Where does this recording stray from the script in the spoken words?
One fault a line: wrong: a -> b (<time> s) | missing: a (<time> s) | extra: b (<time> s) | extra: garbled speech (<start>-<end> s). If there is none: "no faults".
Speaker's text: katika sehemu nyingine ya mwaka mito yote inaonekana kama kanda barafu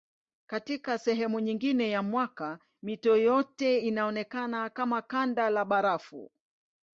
extra: la (5.5 s)